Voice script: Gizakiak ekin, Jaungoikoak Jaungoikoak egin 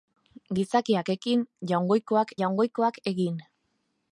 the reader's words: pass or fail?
pass